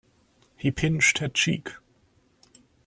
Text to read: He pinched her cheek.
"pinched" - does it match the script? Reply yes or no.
yes